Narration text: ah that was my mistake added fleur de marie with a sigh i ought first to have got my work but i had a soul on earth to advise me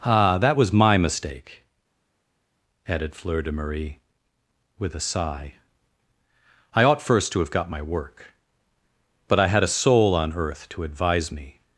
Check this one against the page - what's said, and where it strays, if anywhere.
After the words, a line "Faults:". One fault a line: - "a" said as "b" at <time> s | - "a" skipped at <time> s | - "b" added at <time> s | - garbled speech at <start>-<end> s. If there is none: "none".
ah that was my mistake added fleur de marie with a sigh i ought first to have got my work but i had a soul on earth to advise me
Faults:
none